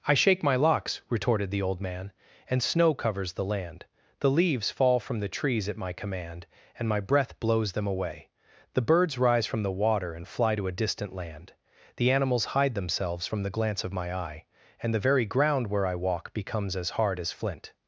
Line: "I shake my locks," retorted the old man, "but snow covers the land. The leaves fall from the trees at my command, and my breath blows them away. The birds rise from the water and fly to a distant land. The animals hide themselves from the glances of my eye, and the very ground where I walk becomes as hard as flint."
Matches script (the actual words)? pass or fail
fail